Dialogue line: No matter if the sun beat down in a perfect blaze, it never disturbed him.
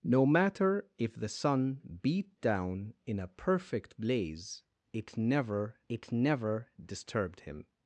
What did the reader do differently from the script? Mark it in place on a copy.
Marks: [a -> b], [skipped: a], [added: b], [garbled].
No matter if the sun beat down in a perfect blaze, it never [added: it never] disturbed him.